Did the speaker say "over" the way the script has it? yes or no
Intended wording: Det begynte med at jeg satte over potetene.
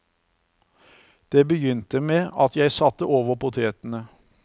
yes